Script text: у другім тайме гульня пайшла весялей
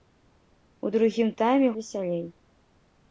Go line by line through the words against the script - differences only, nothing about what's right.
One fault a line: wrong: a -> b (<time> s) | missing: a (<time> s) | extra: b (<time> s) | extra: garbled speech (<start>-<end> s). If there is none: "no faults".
missing: гульня пайшла (1.7 s)